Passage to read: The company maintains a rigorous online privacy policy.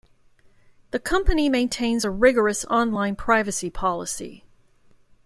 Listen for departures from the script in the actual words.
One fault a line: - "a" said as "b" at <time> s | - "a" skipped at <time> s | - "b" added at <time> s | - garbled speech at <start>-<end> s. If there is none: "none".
none